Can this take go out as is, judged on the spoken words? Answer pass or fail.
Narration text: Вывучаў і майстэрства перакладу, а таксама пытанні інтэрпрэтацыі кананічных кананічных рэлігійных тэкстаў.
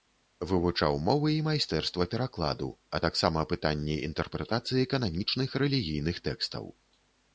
fail